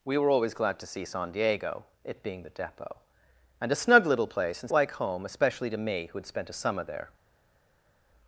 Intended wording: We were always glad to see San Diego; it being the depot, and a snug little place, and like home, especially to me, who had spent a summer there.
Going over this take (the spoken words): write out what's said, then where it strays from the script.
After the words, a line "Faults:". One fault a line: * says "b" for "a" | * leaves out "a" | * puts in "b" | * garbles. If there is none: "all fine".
We were always glad to see San Diego; it being the depot, and a snug little place, and like home, especially to me, who had spent a summer there.
Faults:
all fine